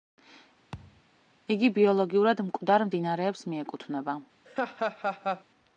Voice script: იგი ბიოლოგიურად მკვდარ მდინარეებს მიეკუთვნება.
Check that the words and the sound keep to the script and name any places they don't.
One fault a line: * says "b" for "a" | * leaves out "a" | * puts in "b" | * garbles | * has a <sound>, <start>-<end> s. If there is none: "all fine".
* has a thud, 0.7-1.0 s
* has a laugh, 4.5-5.4 s